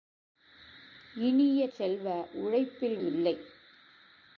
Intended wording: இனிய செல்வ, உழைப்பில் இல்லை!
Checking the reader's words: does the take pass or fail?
pass